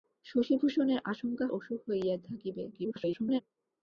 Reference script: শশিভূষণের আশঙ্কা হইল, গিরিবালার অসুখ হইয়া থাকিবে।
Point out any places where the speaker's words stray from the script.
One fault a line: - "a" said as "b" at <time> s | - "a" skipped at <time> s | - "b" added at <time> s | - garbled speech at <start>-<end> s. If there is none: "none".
- "হইল গিরিবালার" skipped at 1.5 s
- garbled speech at 2.7-3.4 s